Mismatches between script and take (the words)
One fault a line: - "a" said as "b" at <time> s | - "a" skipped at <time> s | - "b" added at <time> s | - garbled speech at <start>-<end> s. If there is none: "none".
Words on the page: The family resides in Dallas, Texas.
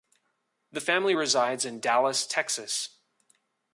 none